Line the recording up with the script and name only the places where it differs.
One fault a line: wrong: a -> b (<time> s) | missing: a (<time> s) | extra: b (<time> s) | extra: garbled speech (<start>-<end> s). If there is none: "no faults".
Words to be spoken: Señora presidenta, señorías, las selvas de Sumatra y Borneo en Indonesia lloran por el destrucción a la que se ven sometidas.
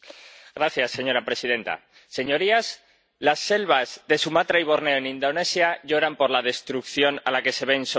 wrong: el -> la (6.3 s)